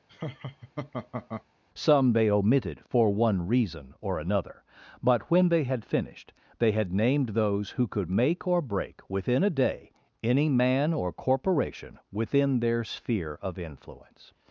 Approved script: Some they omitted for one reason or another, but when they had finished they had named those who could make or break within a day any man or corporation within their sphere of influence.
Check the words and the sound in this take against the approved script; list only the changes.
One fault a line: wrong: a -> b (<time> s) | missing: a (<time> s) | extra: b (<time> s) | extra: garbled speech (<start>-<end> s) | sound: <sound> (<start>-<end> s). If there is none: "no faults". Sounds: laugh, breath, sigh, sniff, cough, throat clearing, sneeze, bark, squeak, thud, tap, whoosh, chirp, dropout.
sound: laugh (0.1-1.4 s)